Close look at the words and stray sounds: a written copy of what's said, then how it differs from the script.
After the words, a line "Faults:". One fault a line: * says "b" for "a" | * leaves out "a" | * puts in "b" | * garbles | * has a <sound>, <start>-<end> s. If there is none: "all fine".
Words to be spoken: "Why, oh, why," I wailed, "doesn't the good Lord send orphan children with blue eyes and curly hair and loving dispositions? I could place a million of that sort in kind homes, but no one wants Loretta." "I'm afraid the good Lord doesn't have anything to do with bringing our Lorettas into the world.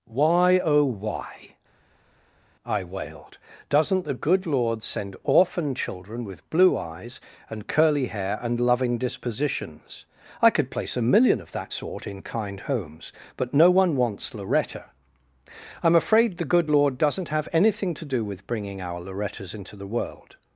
"Why, oh, why," I wailed, "doesn't the good Lord send orphan children with blue eyes and curly hair and loving dispositions? I could place a million of that sort in kind homes, but no one wants Loretta." "I'm afraid the good Lord doesn't have anything to do with bringing our Lorettas into the world.
Faults:
all fine